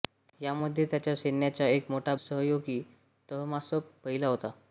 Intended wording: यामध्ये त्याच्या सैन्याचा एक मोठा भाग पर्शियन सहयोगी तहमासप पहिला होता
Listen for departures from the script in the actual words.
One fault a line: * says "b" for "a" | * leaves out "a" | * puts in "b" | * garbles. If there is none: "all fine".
* leaves out "भाग पर्शियन"